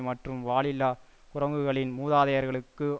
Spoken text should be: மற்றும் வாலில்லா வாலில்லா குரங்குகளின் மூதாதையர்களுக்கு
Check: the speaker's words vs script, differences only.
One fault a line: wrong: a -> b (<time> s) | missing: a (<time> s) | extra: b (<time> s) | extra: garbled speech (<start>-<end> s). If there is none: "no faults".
missing: வாலில்லா (0.9 s)